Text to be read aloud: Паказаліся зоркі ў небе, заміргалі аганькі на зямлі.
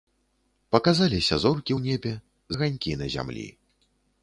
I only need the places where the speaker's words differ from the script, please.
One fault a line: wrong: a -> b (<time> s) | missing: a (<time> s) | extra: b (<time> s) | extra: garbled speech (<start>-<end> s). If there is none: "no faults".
missing: заміргалі (2.1 s)